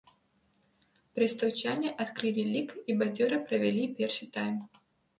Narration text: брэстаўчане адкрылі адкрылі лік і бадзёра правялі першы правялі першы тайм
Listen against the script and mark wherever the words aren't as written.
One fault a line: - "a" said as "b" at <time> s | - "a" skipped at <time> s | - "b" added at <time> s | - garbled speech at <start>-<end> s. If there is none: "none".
- "адкрылі" skipped at 2.5 s
- "правялі першы" skipped at 4.3 s